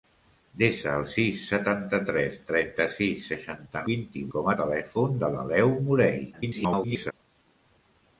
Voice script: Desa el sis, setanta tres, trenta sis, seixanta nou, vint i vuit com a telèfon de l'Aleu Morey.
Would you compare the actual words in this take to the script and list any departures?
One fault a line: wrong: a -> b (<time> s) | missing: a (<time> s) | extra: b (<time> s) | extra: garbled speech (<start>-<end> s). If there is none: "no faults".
missing: nou (3.9 s)
missing: vuit (4.3 s)
extra: garbled speech (6.3-7.1 s)